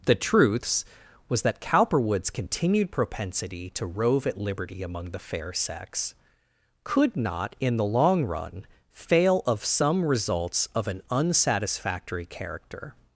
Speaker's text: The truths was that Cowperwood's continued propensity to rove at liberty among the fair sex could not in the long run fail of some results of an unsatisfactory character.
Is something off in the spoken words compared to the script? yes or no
no